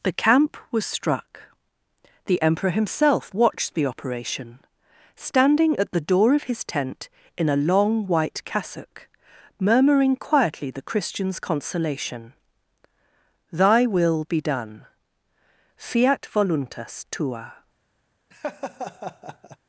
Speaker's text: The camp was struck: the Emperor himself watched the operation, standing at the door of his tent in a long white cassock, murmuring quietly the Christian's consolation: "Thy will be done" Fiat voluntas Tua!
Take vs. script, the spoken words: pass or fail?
pass